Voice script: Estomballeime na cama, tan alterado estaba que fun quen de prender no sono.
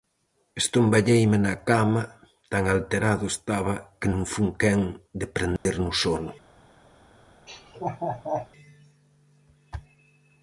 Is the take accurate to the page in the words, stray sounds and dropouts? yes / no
no